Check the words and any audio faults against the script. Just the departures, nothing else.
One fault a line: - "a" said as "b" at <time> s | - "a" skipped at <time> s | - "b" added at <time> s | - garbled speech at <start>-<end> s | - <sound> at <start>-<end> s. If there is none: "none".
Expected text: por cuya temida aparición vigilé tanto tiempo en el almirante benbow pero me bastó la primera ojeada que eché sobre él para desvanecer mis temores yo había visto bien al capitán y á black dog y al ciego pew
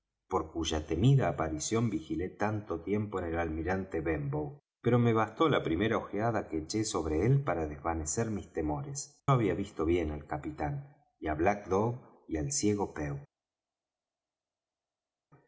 - "yo" skipped at 9.3 s